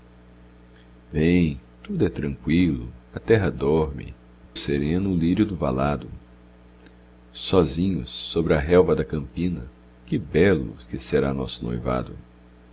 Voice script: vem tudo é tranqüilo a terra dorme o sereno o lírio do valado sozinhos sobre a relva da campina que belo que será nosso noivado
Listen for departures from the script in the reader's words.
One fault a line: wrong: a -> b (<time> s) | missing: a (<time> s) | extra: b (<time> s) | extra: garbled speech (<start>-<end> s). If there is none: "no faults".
no faults